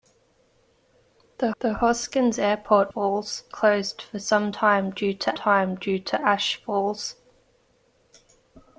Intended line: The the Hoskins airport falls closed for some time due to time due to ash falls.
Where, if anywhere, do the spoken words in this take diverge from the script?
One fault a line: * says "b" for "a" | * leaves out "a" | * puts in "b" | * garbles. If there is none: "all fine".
all fine